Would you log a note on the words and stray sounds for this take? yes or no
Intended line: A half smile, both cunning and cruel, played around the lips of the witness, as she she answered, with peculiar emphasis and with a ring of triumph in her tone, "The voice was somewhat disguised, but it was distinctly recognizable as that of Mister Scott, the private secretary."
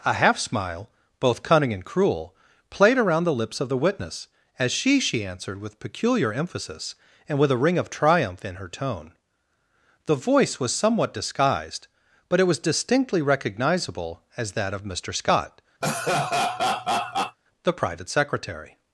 yes